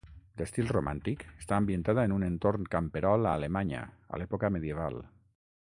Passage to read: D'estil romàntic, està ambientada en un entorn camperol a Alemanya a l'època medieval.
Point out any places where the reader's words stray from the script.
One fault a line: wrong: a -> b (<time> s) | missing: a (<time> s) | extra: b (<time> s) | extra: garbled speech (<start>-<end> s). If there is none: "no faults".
no faults